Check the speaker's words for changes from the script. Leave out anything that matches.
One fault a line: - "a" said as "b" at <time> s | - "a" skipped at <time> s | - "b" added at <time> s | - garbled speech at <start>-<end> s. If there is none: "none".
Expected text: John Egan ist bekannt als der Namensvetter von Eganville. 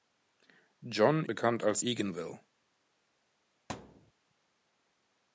- "Egan ist" skipped at 1.2 s
- "der Namensvetter von" skipped at 1.8 s